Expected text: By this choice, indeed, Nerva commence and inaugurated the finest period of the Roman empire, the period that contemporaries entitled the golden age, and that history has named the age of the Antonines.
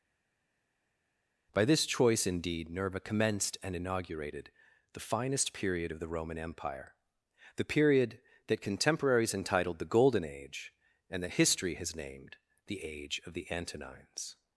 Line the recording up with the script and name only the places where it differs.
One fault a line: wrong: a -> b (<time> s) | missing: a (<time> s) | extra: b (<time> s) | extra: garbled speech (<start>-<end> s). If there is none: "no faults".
wrong: commence -> commenced (3.0 s)